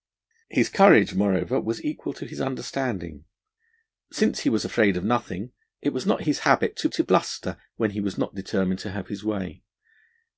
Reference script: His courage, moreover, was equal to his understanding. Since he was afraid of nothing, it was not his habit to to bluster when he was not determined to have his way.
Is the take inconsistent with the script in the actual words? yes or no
no